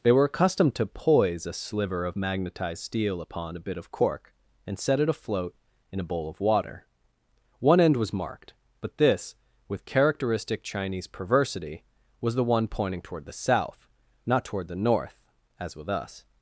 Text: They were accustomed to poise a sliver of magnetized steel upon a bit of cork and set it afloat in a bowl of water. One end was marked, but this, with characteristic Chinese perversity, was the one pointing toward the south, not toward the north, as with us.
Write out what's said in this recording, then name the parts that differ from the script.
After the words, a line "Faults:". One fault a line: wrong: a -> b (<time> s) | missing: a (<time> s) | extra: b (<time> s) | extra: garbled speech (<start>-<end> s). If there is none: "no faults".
They were accustomed to poise a sliver of magnetized steel upon a bit of cork and set it afloat in a bowl of water. One end was marked, but this, with characteristic Chinese perversity, was the one pointing toward the south, not toward the north, as with us.
Faults:
no faults